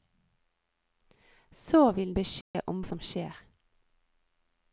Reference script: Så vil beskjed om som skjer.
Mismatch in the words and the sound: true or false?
true